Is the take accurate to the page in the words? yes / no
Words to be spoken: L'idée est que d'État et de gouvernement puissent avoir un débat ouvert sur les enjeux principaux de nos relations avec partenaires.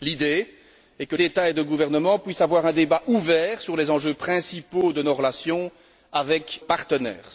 yes